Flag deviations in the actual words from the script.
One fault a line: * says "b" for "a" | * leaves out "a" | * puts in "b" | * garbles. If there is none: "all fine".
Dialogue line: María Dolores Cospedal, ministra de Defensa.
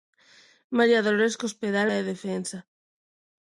* leaves out "ministra"